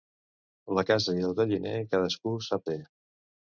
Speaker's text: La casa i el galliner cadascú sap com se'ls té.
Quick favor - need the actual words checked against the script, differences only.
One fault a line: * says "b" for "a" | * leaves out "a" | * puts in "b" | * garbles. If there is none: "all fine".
* leaves out "com se'ls"